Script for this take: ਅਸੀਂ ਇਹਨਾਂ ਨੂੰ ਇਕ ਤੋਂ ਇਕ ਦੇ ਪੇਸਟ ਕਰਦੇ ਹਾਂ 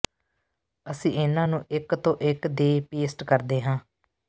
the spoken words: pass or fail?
pass